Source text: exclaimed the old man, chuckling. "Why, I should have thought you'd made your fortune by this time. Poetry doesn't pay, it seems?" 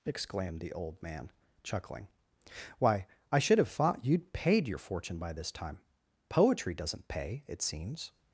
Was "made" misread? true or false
true